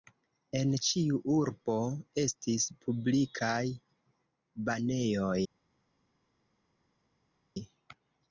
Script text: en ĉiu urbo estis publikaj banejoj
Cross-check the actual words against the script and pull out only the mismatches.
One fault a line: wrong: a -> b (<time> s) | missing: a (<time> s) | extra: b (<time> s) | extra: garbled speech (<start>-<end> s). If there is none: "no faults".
no faults